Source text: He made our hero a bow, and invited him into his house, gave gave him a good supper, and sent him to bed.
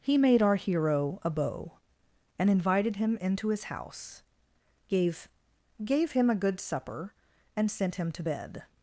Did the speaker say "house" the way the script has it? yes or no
yes